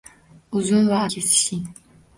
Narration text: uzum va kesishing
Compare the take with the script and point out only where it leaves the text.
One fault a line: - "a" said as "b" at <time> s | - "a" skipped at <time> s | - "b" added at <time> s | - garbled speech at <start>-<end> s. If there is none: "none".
none